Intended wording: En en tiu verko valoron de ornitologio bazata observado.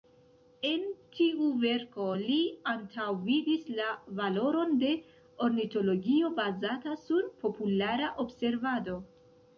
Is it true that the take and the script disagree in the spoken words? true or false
true